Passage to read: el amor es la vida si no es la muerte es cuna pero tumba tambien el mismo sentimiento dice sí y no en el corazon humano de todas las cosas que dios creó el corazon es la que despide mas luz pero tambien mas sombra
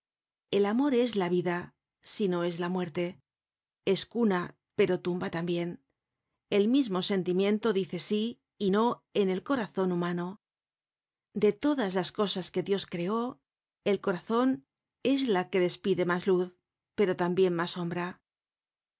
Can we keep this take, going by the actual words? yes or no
yes